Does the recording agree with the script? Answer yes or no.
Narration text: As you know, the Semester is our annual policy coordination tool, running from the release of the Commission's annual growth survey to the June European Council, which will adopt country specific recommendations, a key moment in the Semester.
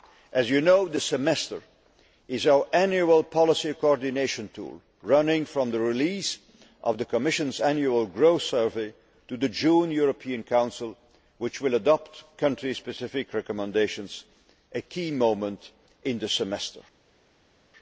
yes